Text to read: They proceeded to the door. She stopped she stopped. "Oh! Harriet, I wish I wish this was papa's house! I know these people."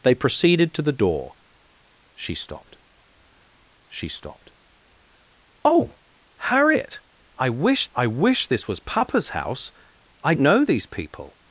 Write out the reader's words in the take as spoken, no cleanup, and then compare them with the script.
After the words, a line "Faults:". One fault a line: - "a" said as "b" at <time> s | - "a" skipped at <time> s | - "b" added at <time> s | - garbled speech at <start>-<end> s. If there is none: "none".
They proceeded to the door. She stopped she stopped. "Oh! Harriet, I wish I wish this was papa's house! I know these people."
Faults:
none